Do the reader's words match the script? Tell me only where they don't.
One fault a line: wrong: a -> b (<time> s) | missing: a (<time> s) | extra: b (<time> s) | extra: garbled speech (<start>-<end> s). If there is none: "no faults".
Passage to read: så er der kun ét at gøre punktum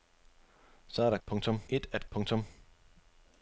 wrong: kun -> punktum (1.3 s)
missing: gøre (2.1 s)